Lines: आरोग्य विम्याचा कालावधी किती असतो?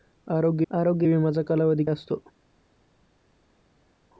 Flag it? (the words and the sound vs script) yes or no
yes